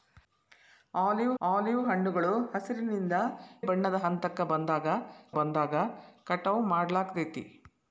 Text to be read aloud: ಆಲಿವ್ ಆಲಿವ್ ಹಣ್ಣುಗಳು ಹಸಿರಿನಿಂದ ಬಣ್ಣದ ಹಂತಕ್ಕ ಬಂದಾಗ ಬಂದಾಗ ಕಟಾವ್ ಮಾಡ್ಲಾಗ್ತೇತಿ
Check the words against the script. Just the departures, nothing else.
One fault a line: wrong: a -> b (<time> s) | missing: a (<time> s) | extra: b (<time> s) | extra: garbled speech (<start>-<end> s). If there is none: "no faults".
no faults